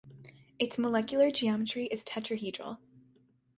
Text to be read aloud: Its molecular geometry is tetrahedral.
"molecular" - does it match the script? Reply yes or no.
yes